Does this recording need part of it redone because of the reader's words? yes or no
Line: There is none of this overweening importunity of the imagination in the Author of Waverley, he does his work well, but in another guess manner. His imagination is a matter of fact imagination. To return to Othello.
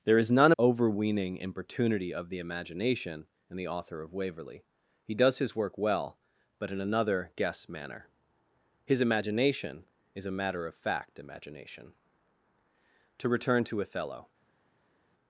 yes